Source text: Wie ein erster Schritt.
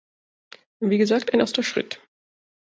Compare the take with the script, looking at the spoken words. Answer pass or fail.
fail